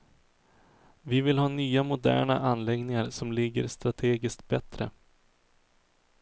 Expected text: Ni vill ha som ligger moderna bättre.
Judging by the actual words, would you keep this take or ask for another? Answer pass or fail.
fail